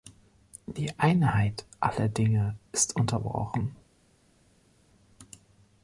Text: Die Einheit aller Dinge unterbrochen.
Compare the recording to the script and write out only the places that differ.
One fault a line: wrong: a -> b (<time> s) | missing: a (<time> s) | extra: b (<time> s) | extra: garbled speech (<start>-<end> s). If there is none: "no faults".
extra: ist (2.7 s)